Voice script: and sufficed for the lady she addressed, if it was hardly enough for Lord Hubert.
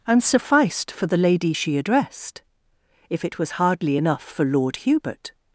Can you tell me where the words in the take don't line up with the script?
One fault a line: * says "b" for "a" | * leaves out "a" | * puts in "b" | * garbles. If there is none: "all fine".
all fine